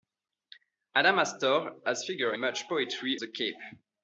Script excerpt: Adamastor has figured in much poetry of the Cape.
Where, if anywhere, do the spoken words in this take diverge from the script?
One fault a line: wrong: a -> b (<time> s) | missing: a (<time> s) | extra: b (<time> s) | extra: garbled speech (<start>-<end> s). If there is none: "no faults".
missing: in (2.4 s)
missing: of (3.2 s)